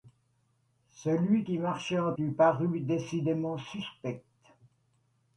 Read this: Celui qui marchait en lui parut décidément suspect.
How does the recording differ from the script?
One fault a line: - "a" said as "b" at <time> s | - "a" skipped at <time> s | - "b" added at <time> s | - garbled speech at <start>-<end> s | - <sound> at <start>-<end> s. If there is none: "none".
none